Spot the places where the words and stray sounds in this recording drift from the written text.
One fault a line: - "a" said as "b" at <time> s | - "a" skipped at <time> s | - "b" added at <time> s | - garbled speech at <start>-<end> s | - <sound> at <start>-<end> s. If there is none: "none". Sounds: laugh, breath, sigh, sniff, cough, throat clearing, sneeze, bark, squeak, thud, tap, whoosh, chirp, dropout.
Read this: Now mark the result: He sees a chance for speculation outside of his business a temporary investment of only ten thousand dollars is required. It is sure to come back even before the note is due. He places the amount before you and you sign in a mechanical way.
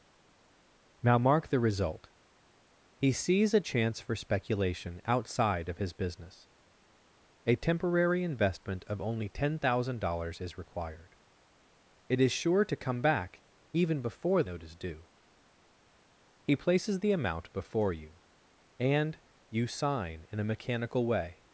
- "the" skipped at 14.4 s